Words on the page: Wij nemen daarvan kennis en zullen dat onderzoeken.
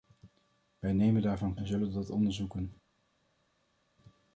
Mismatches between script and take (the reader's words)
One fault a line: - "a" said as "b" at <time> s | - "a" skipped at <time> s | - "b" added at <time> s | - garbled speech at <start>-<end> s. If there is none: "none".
- "kennis" skipped at 1.6 s